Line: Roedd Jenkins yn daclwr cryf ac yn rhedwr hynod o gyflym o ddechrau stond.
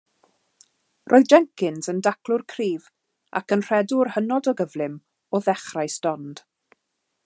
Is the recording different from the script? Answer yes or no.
no